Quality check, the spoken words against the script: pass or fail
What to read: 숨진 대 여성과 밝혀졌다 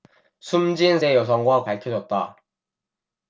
pass